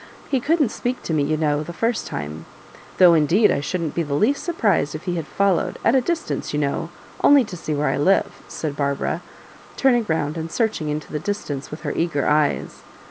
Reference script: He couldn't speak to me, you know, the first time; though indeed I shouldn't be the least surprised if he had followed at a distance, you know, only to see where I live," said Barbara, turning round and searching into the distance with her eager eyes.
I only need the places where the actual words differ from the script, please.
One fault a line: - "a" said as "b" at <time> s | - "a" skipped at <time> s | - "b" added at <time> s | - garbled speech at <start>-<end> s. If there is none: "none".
none